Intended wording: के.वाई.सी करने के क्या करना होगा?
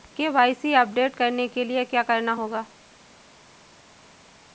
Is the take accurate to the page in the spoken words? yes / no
no